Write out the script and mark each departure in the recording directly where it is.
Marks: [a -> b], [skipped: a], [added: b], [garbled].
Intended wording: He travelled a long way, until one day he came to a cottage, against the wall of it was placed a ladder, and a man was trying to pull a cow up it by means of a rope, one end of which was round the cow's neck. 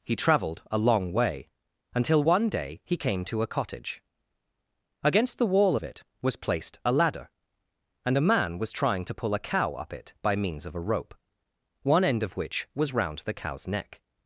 He travelled a long way, until one day he came to a cottage, against the wall of it was placed a ladder, and a man was trying to pull a cow up it by means of a rope, one end of which was round the cow's neck.